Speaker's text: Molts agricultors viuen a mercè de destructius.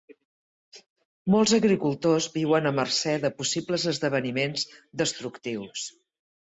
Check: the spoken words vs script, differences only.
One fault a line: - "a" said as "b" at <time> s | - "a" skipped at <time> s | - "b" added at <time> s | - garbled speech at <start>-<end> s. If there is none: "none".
- "possibles esdeveniments" added at 3.4 s